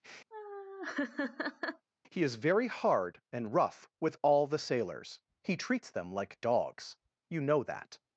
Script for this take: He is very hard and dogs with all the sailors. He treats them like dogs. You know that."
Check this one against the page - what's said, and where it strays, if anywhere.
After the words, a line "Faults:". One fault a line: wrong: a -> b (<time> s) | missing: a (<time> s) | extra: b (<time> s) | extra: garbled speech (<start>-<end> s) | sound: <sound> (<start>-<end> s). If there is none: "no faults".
He is very hard and rough with all the sailors. He treats them like dogs. You know that."
Faults:
sound: laugh (0.3-1.9 s)
wrong: dogs -> rough (3.5 s)